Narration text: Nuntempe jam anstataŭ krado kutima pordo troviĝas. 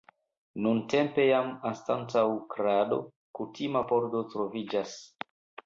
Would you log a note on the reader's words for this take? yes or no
no